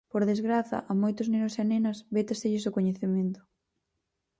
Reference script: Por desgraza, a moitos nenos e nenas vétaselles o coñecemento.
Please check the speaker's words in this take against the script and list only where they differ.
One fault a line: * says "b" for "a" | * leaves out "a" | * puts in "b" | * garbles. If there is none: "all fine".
all fine